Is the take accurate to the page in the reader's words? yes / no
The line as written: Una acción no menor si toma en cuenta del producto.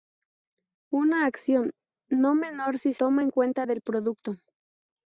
yes